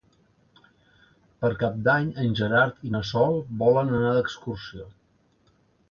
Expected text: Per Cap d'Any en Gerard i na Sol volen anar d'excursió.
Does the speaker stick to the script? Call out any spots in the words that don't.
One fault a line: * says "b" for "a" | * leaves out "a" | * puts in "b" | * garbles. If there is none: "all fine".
all fine